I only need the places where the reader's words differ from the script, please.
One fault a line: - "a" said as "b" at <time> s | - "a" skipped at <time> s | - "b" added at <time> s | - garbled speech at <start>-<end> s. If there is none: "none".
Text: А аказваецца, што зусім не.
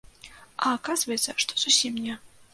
none